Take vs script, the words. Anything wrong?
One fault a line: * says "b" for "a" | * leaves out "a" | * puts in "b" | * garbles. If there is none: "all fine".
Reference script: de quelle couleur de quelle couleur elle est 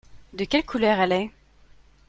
* leaves out "de quelle couleur"